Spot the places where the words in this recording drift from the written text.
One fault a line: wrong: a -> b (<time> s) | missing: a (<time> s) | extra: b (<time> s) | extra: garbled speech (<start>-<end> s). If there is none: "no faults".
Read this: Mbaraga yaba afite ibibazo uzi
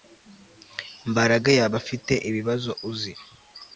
no faults